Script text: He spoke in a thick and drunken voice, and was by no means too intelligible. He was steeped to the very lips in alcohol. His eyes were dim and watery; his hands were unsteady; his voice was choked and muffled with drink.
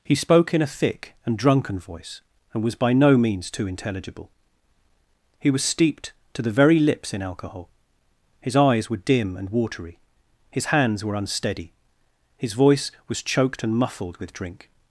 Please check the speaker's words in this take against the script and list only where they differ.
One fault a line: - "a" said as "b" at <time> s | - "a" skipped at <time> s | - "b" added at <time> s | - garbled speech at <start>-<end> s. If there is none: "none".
none